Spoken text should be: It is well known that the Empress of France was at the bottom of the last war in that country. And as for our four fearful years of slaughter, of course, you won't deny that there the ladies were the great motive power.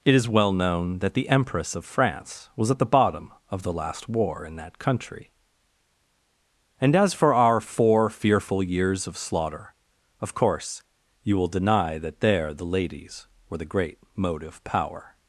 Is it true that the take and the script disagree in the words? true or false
true